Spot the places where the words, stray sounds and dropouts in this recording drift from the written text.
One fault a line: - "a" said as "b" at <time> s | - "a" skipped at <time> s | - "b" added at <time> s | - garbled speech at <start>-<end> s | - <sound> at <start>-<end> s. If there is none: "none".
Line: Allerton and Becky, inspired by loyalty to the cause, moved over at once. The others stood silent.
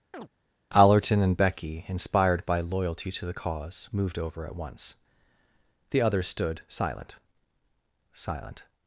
- chirp at 0.1-0.3 s
- "silent" added at 8.1 s